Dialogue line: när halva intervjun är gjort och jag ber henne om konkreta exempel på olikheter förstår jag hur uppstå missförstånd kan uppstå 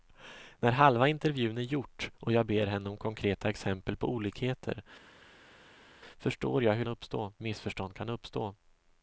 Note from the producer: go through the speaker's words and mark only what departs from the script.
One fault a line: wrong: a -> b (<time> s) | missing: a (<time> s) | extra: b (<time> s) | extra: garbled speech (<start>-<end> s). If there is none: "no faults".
no faults